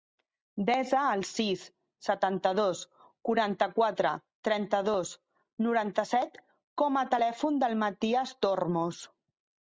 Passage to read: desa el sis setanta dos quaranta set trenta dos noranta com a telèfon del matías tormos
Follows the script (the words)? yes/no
no